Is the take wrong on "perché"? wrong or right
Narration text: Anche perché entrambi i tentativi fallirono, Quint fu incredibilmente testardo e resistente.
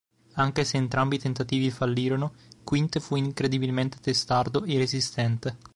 wrong